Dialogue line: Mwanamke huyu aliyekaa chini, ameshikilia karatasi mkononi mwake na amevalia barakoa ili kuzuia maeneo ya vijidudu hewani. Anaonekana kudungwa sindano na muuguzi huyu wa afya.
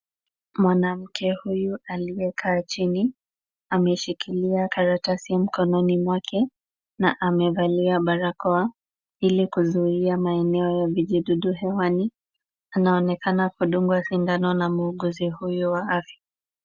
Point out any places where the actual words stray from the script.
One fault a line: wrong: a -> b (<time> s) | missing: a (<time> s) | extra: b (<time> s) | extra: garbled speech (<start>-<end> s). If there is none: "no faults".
no faults